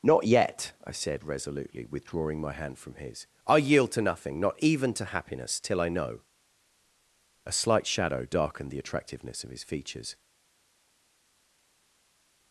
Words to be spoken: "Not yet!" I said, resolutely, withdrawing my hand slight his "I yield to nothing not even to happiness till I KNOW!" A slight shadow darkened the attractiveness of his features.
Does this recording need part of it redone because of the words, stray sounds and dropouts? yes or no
yes